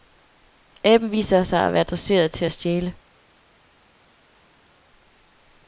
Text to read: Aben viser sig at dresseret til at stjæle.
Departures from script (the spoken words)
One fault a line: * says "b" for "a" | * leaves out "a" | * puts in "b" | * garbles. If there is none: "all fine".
* puts in "være"